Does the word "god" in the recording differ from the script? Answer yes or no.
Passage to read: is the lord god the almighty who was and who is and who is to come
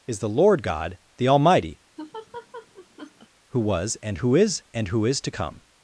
no